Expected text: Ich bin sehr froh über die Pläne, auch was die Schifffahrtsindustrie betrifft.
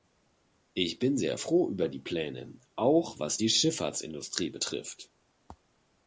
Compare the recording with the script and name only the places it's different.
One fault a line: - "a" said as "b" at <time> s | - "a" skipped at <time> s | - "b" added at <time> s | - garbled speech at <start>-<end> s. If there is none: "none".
none